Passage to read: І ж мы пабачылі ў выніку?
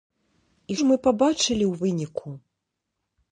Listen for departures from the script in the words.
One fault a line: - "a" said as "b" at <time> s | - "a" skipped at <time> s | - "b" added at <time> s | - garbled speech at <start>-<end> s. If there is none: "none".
none